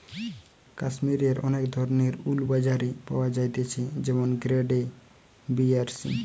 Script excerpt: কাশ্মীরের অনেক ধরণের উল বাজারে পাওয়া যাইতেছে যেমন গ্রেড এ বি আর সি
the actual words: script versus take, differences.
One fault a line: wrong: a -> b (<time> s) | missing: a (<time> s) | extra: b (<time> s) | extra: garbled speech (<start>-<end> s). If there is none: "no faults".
no faults